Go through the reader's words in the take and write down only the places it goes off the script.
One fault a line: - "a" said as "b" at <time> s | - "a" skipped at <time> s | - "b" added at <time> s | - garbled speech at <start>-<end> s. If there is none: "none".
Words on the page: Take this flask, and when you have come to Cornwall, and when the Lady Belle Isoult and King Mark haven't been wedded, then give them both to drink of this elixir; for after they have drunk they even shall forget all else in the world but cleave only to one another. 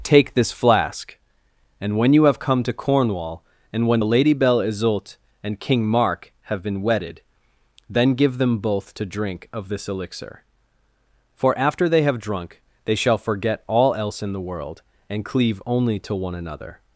- "haven't" said as "have" at 6.4 s
- "even" skipped at 12.9 s
- "but" said as "and" at 15.1 s